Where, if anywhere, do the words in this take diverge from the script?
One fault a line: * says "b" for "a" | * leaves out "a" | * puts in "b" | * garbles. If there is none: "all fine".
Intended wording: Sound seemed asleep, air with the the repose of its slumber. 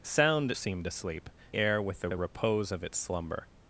all fine